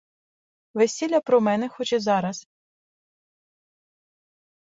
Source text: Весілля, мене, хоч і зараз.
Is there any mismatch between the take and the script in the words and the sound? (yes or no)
yes